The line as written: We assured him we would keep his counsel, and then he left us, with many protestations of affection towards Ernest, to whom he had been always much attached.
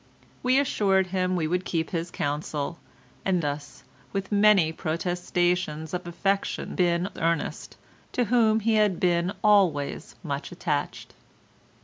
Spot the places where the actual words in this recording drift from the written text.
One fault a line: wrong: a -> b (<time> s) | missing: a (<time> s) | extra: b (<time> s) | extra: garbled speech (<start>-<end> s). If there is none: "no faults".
missing: then he left (3.4 s)
wrong: towards -> been (6.8 s)